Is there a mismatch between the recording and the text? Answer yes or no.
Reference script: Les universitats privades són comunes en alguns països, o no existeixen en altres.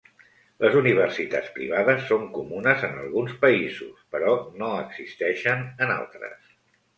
yes